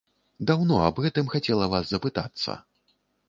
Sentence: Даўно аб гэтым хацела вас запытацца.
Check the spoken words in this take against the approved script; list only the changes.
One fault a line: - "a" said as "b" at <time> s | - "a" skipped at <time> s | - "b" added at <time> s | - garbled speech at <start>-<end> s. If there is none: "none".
none